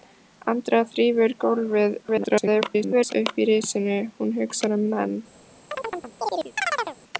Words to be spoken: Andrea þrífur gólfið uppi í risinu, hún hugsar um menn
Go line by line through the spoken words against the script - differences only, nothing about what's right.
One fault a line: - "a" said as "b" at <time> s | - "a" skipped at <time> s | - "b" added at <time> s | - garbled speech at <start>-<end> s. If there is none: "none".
- garbled speech at 2.0-3.1 s